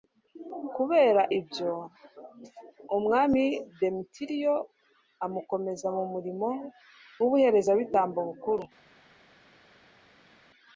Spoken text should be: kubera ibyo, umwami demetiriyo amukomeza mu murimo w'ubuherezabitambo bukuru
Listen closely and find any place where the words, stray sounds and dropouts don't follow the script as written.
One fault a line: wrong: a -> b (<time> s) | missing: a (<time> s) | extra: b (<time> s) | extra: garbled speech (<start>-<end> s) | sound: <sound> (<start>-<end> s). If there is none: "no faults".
no faults